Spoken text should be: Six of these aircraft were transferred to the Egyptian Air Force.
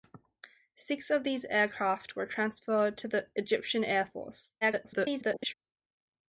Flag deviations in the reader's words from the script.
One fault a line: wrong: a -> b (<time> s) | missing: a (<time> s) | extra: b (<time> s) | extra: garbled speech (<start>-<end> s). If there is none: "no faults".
extra: garbled speech (4.6-5.5 s)